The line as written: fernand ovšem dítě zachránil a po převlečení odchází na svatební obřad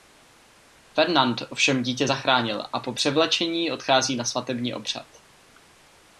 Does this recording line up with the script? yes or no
yes